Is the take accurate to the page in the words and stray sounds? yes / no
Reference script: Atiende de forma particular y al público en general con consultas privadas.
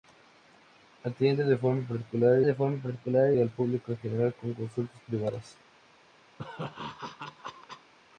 no